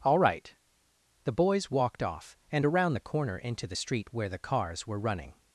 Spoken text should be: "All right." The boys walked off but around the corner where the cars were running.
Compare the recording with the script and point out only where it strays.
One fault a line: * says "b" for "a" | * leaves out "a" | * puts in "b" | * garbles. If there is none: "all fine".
* says "and" for "but"
* puts in "into the street"